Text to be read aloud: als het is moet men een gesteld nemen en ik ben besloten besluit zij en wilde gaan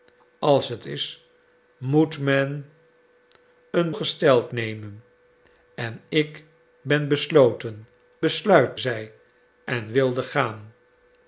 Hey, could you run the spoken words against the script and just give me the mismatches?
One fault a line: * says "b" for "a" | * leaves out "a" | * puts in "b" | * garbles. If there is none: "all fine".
all fine